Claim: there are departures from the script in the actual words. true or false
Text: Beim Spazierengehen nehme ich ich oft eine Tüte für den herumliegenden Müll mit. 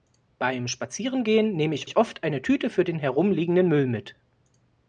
false